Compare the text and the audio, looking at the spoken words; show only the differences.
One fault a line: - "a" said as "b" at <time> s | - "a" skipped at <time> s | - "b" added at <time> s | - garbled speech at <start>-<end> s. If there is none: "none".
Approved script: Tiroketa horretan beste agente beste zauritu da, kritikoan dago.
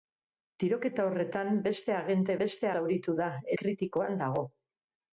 none